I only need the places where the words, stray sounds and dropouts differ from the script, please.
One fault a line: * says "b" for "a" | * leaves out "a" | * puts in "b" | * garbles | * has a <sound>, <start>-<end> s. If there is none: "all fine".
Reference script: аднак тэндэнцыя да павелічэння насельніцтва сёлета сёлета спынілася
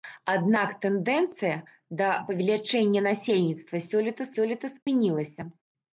* has a dropout, 4.8-4.9 s